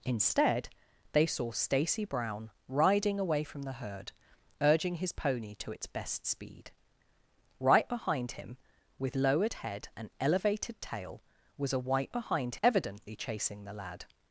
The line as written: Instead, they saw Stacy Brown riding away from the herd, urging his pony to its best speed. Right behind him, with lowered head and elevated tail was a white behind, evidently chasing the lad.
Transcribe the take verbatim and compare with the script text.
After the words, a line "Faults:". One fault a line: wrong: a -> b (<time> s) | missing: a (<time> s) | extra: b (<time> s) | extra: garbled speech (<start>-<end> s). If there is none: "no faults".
Instead, they saw Stacy Brown riding away from the herd, urging his pony to its best speed. Right behind him, with lowered head and elevated tail was a white behind, evidently chasing the lad.
Faults:
no faults